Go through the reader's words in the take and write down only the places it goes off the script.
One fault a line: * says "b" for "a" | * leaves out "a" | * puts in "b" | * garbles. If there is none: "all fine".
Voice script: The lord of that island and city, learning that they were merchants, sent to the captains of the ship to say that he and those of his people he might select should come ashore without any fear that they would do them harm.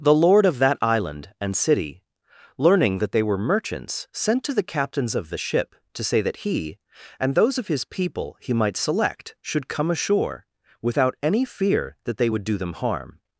all fine